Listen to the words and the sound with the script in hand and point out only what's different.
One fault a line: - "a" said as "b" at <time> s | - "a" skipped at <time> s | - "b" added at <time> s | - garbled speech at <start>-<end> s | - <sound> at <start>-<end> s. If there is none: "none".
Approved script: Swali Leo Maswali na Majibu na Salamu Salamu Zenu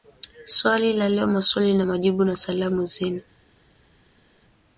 - "la" added at 0.9 s
- "Salamu" skipped at 2.8 s